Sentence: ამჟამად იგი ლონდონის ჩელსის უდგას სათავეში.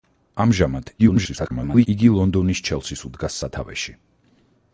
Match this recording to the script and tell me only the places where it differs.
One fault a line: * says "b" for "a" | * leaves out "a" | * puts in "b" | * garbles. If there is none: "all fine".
* garbles